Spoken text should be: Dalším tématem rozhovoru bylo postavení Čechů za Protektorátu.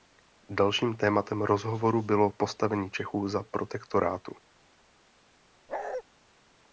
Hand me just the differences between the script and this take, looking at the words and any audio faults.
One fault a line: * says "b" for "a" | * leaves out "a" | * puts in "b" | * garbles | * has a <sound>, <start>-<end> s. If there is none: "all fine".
* has a bark, 5.7-6.0 s